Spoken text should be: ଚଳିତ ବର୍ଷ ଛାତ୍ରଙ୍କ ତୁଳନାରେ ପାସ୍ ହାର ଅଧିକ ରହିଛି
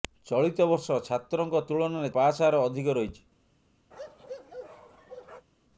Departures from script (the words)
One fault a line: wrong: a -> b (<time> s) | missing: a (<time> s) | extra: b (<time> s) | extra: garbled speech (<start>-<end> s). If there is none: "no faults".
no faults